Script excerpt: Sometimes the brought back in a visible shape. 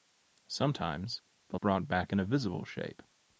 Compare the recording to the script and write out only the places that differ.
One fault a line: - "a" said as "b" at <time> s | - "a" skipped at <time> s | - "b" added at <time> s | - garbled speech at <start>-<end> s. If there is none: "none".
none